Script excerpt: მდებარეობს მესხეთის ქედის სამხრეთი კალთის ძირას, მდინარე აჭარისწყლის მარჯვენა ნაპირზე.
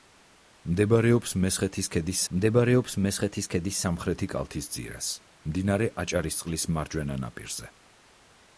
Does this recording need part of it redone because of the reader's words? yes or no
yes